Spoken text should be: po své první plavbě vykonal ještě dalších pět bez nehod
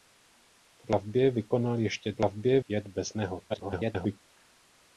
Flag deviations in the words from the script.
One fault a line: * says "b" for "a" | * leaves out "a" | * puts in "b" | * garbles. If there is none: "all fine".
* leaves out "své první"
* says "plavbě" for "dalších"
* garbles